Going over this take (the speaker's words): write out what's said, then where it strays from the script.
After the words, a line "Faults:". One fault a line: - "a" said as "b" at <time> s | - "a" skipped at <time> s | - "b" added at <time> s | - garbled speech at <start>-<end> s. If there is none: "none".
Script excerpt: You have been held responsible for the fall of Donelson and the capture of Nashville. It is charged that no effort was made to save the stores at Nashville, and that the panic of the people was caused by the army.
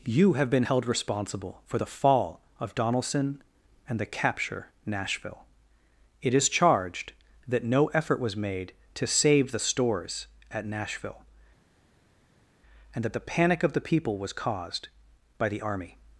You have been held responsible for the fall of Donelson and the capture Nashville. It is charged that no effort was made to save the stores at Nashville, and that the panic of the people was caused by the army.
Faults:
- "of" skipped at 4.7 s